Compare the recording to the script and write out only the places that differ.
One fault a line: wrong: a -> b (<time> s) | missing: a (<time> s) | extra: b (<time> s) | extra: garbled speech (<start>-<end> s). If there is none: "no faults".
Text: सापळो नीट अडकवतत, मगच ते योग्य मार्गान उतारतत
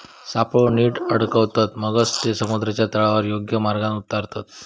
extra: समुद्राच्या तळावर (2.3 s)